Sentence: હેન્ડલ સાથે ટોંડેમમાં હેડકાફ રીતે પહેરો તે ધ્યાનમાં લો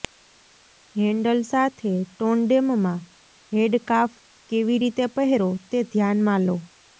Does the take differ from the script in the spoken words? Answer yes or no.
yes